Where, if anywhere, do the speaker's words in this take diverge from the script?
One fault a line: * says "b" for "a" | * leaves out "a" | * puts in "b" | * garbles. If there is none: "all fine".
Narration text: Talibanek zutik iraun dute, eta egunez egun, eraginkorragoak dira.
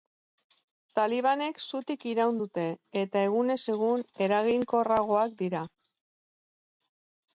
all fine